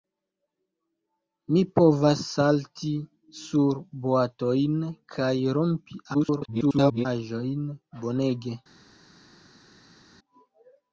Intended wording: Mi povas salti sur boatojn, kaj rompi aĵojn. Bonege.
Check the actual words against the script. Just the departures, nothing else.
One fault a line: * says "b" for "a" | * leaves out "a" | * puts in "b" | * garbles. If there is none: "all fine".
* garbles